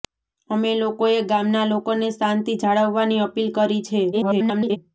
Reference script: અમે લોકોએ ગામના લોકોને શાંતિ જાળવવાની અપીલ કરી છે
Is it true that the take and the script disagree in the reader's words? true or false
true